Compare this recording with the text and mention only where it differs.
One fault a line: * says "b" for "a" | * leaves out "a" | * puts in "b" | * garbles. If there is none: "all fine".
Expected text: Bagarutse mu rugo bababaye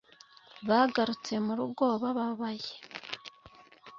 all fine